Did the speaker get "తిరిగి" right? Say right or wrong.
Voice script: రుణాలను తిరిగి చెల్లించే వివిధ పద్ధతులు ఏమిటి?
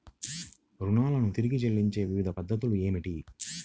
right